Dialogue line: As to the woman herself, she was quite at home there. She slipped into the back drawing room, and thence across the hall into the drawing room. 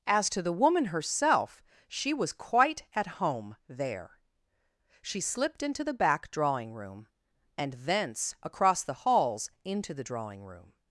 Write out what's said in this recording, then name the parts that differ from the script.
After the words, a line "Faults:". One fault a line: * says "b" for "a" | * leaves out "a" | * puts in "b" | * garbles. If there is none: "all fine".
As to the woman herself, she was quite at home there. She slipped into the back drawing room, and thence across the halls into the drawing room.
Faults:
* says "halls" for "hall"